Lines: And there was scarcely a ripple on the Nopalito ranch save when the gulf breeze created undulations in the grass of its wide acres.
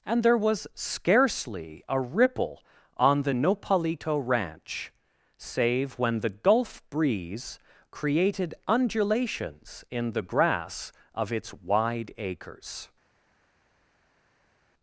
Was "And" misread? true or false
false